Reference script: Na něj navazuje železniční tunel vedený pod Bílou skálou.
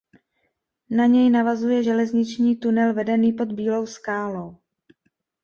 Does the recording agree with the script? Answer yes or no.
yes